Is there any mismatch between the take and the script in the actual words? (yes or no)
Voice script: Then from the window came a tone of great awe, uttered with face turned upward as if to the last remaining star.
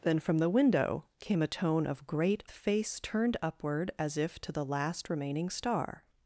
yes